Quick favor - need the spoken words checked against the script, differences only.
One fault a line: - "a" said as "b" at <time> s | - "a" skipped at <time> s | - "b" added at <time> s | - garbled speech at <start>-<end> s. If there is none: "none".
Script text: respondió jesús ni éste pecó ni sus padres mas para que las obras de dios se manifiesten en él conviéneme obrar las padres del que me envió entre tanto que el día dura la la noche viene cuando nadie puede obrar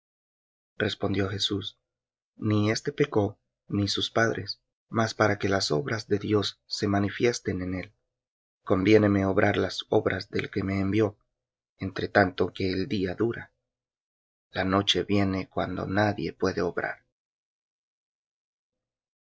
- "padres" said as "obras" at 9.9 s
- "la" skipped at 14.6 s